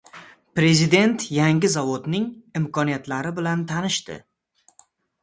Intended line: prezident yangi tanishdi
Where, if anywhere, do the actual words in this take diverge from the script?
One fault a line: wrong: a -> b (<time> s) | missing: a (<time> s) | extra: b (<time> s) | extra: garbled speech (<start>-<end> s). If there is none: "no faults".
extra: zavodning imkoniyatlari bilan (1.7 s)